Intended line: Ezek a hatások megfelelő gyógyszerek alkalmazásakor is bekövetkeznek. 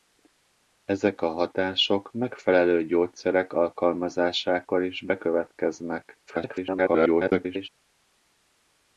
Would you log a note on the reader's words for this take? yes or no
yes